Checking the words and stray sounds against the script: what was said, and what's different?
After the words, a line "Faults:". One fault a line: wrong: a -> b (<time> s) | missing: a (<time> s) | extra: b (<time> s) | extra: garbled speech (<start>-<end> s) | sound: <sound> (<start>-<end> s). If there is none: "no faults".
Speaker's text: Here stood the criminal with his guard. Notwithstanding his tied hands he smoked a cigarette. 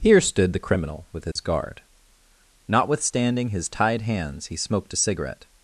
Here stood the criminal with his guard. Notwithstanding his tied hands he smoked a cigarette.
Faults:
sound: dropout (1.3-1.4 s)